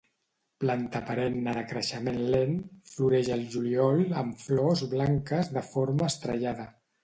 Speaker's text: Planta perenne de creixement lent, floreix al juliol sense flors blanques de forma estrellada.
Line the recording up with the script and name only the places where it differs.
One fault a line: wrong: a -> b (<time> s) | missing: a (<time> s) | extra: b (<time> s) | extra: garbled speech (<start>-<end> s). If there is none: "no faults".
wrong: sense -> amb (4.2 s)